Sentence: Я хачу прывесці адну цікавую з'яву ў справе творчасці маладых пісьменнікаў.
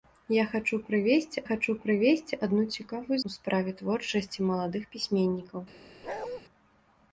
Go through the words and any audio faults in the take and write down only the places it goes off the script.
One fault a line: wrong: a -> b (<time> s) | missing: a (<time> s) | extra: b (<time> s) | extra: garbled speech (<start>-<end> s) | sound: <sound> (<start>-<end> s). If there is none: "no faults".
extra: хачу прывесці (1.5 s)
missing: з'яву (3.2 s)
sound: bark (6.0-6.4 s)